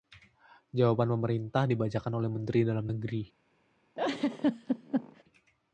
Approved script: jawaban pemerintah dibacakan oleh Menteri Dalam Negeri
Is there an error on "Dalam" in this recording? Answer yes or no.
no